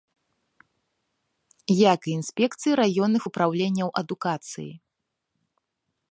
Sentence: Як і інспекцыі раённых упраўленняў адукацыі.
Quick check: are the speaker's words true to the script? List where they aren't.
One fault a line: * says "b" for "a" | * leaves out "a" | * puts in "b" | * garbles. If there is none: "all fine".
all fine